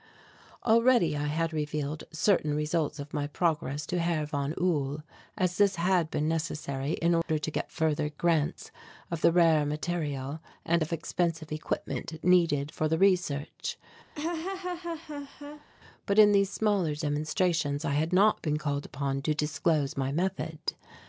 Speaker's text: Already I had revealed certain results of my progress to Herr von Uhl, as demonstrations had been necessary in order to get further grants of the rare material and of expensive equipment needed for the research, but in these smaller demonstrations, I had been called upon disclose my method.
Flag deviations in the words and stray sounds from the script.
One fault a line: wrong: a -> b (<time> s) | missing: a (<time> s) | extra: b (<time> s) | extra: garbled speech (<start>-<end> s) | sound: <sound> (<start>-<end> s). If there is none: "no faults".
wrong: demonstrations -> this (5.6 s)
sound: dropout (7.2-7.3 s)
sound: laugh (14.1-15.7 s)
extra: not (18.1 s)
extra: to (19.2 s)